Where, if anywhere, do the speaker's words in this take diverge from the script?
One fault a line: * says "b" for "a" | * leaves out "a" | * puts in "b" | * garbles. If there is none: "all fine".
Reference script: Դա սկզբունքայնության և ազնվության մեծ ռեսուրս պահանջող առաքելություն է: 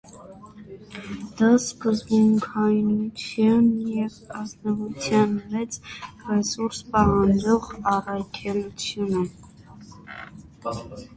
all fine